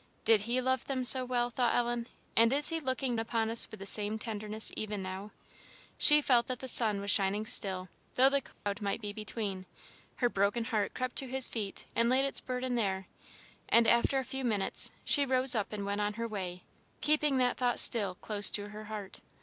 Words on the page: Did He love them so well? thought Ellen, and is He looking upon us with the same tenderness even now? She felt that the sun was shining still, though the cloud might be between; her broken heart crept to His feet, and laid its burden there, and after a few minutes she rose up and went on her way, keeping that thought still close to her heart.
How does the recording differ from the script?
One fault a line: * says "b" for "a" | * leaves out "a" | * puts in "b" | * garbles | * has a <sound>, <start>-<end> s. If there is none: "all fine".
* has a dropout, 8.5-8.7 s